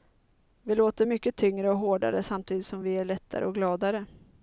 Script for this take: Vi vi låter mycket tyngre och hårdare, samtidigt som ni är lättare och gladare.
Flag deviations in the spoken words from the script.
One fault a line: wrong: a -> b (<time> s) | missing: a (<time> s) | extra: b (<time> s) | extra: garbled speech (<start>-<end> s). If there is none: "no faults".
missing: vi (0.8 s)
wrong: ni -> vi (2.8 s)